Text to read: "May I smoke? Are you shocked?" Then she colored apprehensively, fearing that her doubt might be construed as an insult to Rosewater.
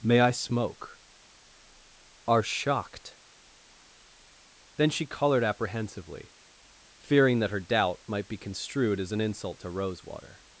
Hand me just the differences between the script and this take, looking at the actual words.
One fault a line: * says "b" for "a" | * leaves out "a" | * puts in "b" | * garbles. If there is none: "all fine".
* leaves out "you"